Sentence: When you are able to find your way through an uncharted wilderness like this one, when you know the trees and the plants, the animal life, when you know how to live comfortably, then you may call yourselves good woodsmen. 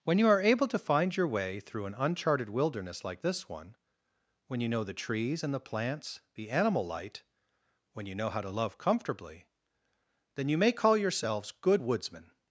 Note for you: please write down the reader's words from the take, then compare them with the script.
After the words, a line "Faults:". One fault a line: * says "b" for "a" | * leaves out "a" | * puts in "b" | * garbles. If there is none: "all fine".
When you are able to find your way through an uncharted wilderness like this one, when you know the trees and the plants, the animal light, when you know how to love comfortably, then you may call yourselves good woodsmen.
Faults:
* says "light" for "life"
* says "love" for "live"